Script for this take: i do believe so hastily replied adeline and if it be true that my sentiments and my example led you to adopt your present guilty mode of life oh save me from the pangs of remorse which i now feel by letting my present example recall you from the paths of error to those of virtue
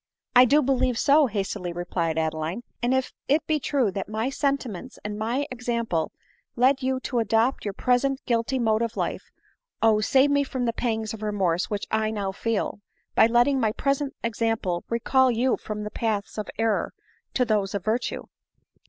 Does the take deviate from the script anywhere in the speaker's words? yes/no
no